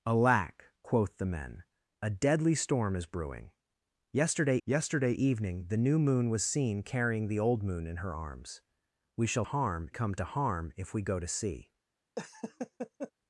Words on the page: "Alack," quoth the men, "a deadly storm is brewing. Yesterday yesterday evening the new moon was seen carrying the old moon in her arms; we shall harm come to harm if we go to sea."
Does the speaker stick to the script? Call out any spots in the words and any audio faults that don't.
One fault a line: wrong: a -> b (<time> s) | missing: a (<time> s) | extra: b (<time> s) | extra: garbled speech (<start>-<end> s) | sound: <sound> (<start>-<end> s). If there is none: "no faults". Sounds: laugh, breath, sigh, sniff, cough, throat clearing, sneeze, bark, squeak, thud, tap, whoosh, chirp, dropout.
sound: laugh (12.2-13.1 s)